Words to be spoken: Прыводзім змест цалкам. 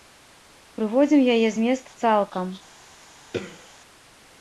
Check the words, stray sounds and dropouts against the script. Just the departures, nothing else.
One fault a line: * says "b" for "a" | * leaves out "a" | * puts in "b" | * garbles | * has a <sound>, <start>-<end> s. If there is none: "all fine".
* puts in "яе"
* has a throat clearing, 3.3-3.7 s